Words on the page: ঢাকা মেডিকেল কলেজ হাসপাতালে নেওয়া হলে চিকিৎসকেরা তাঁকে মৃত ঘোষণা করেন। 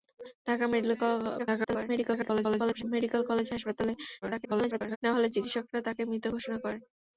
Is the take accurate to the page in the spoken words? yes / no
no